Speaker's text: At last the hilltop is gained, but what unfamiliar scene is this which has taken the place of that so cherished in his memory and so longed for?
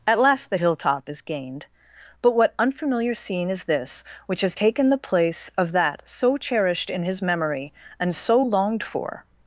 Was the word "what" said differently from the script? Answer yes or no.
no